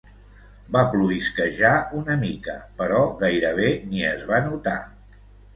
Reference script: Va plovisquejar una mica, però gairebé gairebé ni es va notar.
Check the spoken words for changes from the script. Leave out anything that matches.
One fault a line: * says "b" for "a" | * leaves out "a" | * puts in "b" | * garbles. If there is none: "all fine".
* leaves out "gairebé"